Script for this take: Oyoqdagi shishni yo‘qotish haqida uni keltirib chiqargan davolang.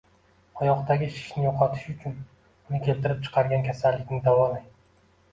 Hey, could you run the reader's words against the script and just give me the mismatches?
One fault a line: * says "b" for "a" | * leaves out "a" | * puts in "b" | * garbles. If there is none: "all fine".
* says "uchun" for "haqida"
* puts in "kasallikni"